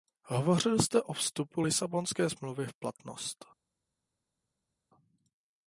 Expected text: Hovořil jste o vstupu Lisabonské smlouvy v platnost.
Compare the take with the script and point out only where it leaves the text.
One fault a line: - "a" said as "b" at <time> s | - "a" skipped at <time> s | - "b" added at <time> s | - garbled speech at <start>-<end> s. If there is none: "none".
none